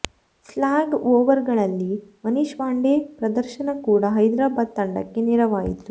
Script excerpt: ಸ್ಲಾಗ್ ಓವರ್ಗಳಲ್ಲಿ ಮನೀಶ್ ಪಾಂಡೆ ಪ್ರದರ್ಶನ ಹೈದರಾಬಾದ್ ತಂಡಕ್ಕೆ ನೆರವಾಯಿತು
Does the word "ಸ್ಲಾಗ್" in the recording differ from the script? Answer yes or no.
no